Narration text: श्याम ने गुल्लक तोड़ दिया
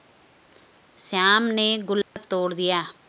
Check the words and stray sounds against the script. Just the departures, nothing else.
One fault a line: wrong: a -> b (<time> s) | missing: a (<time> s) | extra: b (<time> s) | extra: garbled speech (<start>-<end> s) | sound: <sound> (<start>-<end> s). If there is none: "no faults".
sound: dropout (2.0-2.2 s)